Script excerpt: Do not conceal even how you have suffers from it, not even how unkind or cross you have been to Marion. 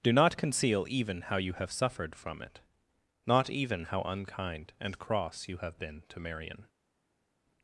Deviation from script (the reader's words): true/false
true